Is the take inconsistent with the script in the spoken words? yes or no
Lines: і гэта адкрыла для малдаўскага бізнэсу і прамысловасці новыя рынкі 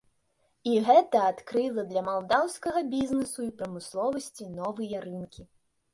no